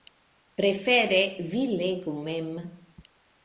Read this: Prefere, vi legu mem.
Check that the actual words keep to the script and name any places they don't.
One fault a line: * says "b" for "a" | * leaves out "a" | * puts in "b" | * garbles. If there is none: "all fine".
all fine